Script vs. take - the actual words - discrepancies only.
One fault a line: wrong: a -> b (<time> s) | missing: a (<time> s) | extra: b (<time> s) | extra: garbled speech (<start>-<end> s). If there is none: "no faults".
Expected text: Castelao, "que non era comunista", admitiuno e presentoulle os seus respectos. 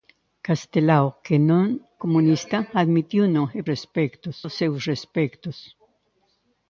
missing: era (1.6 s)
wrong: presentoulle -> respectos (3.7 s)